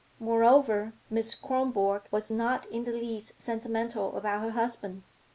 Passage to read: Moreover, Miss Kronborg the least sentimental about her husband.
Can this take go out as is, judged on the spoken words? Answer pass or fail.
fail